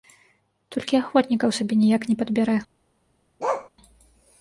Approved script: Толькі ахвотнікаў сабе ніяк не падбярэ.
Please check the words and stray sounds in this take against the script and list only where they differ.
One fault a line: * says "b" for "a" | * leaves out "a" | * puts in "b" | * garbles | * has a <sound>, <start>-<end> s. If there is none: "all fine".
* has a bark, 3.4-3.7 s